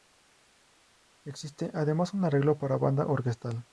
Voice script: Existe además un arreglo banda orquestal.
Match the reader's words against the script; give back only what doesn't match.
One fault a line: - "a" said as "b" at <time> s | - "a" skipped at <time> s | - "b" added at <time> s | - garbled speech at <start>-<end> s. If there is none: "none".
- "para" added at 2.6 s